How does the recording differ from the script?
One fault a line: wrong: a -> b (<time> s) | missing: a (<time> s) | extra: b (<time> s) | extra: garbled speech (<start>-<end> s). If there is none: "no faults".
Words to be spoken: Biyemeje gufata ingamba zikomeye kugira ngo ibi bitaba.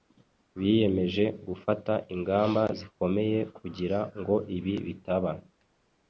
no faults